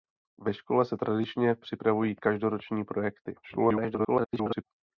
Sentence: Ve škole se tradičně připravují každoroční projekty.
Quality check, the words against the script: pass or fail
fail